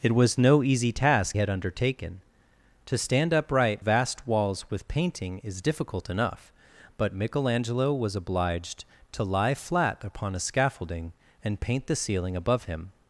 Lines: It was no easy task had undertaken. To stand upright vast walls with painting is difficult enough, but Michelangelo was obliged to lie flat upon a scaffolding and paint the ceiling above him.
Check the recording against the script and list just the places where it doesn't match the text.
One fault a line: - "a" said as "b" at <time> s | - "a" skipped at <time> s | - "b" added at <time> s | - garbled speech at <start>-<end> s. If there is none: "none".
none